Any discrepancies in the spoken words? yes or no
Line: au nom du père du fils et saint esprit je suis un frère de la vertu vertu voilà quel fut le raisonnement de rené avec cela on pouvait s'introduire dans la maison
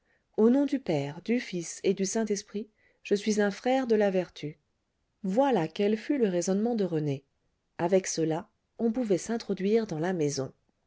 yes